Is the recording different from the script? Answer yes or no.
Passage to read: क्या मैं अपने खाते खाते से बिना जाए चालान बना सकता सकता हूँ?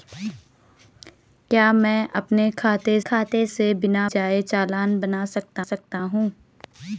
no